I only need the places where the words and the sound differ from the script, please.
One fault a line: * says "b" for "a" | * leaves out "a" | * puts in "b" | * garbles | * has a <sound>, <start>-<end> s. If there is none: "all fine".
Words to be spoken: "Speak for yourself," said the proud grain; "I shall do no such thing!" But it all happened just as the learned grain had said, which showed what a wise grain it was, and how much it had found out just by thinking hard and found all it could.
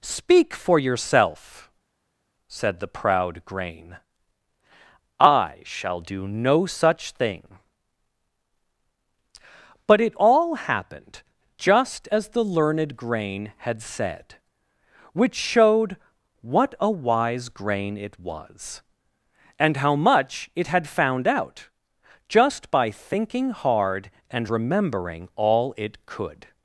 * says "remembering" for "found"